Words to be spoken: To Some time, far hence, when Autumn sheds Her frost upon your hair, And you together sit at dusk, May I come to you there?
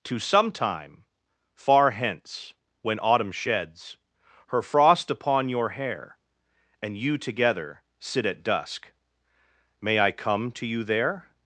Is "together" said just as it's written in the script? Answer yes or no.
yes